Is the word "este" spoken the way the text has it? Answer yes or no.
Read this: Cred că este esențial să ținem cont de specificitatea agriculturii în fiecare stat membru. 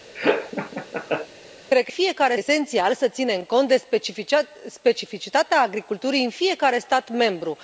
no